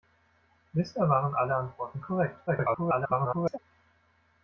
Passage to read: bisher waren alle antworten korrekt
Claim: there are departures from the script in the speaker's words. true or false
true